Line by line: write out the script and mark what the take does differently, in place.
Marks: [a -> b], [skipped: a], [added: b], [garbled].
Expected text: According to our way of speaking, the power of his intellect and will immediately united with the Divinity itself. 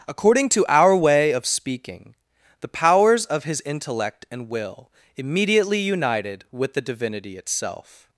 According to our way of speaking, the [power -> powers] of his intellect and will immediately united with the Divinity itself.